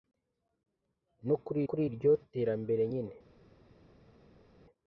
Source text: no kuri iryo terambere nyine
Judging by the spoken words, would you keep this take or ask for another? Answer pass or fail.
fail